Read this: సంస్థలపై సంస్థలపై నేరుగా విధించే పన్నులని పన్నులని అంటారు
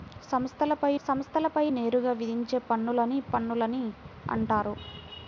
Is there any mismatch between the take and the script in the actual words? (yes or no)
no